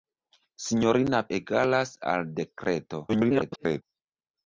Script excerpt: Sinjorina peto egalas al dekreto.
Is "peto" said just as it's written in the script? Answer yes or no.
no